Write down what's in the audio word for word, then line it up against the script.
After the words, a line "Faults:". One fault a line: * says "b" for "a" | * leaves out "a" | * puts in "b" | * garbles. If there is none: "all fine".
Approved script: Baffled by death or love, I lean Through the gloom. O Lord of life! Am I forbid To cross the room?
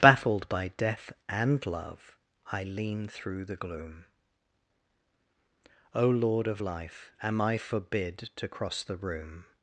Baffled by death and love, I lean Through the gloom. O Lord of life! Am I forbid To cross the room?
Faults:
* says "and" for "or"